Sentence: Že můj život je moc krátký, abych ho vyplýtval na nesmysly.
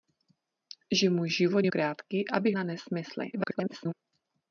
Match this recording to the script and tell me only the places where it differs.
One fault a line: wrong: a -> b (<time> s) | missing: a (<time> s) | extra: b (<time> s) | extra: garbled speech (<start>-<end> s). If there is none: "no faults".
missing: moc (1.7 s)
missing: ho vyplýtval (2.6 s)
extra: garbled speech (3.3-3.9 s)